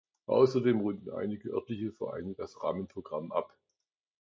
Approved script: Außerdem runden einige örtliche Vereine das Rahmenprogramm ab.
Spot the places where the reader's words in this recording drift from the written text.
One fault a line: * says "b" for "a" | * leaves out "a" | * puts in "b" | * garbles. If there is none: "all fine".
all fine